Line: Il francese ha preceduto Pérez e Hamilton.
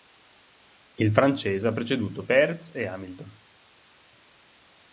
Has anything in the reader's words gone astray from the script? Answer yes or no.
no